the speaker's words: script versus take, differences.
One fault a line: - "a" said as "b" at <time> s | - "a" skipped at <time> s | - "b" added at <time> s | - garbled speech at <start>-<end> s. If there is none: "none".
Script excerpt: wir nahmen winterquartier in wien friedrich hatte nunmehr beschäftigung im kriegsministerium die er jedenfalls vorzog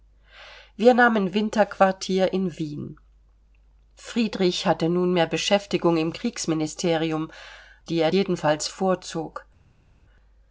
none